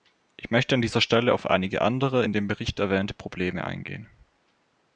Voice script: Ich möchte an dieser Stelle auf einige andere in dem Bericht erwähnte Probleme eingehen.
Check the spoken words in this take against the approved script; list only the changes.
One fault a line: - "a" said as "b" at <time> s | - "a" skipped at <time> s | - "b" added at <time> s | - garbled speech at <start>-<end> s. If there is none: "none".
none